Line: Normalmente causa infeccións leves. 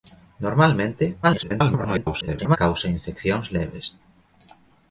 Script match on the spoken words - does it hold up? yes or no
no